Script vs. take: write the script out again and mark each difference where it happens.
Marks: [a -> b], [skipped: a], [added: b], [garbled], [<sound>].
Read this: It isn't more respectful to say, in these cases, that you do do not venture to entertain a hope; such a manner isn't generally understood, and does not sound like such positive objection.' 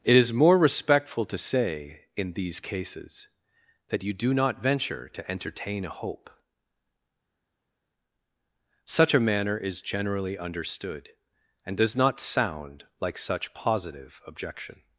It [isn't -> is] more respectful to say, in these cases, that you do [skipped: do] not venture to entertain a hope; such a manner [isn't -> is] generally understood, and does not sound like such positive objection.'